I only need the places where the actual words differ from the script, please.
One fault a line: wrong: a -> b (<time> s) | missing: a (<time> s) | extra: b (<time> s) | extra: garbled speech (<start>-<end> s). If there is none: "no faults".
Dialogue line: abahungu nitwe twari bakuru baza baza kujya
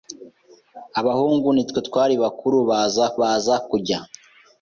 no faults